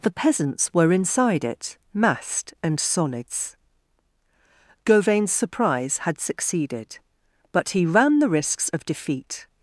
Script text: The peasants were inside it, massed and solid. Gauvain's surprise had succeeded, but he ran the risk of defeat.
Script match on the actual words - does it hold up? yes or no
no